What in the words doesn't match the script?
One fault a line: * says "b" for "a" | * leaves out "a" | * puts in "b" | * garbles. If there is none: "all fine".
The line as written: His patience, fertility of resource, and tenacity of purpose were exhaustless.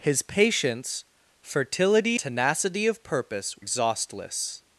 * leaves out "of resource and"
* leaves out "were"